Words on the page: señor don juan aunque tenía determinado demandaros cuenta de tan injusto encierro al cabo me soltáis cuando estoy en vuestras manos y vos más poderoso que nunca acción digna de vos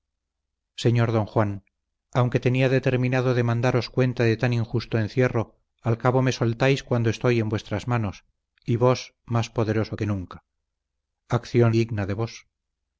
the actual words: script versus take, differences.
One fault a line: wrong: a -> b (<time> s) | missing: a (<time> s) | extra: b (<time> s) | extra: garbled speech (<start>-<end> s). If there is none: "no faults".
no faults